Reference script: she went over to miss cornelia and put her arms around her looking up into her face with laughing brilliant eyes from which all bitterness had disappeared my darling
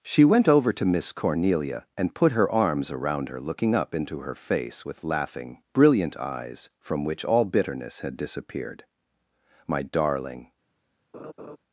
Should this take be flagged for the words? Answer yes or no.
no